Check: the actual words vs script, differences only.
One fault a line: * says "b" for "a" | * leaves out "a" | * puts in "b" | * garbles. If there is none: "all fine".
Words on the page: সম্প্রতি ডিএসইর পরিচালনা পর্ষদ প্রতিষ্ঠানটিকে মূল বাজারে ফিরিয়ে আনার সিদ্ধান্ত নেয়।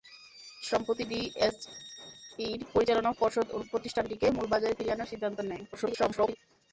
* garbles